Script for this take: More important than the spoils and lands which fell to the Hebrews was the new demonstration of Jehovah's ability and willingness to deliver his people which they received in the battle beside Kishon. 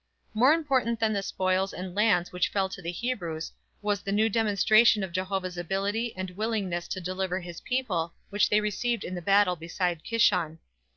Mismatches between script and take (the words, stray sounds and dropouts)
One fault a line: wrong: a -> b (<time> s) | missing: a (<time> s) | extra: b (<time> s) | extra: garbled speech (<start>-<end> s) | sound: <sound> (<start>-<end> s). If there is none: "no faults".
no faults